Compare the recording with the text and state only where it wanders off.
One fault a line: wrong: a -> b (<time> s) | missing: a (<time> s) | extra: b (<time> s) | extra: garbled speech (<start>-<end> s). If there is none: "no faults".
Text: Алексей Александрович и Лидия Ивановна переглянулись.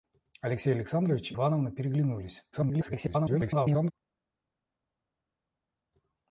missing: Лидия (1.4 s)
extra: garbled speech (2.5-3.9 s)